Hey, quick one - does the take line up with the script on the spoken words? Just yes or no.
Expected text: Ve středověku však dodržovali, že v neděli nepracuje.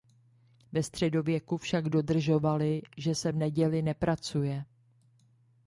no